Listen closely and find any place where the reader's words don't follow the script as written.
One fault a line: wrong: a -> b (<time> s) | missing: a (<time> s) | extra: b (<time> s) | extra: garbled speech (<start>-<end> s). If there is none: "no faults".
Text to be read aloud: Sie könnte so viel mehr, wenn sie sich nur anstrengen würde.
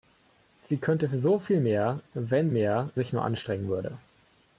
wrong: sie -> mehr (2.5 s)